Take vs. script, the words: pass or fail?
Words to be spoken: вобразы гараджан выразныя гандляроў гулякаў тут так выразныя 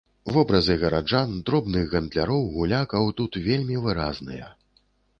fail